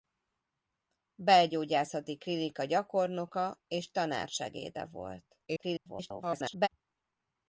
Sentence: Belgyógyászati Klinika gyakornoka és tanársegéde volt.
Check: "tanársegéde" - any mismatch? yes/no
no